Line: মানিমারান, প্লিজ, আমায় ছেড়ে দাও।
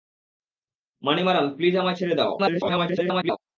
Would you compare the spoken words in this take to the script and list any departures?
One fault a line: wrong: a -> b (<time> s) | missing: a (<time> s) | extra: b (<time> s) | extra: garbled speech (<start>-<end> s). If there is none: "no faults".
extra: garbled speech (2.4-3.4 s)